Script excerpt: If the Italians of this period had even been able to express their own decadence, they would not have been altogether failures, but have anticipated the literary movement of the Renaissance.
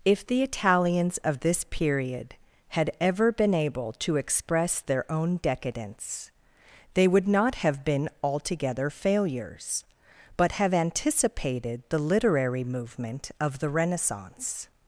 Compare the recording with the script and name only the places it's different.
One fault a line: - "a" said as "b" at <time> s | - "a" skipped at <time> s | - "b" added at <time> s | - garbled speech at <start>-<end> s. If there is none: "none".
- "even" said as "ever" at 3.0 s